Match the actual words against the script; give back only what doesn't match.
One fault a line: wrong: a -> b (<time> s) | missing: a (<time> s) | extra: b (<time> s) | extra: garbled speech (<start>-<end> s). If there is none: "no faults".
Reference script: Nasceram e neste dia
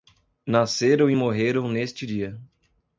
extra: morreram (1.1 s)